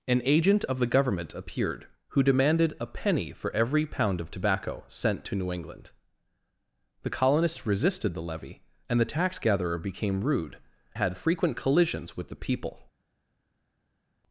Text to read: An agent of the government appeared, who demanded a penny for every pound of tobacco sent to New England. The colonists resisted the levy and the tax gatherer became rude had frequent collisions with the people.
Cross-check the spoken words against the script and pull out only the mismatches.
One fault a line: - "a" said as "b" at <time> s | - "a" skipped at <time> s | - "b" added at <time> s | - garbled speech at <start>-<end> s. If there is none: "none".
none